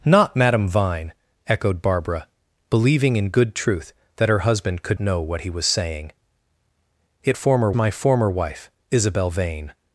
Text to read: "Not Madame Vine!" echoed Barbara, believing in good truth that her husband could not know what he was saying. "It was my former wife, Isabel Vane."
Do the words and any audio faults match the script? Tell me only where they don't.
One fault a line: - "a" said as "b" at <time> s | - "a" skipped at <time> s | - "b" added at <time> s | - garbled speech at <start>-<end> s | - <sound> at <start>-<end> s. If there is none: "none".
- "not" skipped at 5.0 s
- "was" said as "former" at 7.3 s